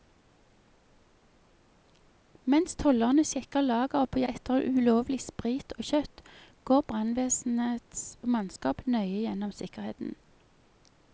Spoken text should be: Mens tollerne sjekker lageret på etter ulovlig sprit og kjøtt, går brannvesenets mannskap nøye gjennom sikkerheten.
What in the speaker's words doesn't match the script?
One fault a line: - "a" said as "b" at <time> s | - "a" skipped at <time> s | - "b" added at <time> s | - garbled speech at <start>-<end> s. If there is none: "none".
none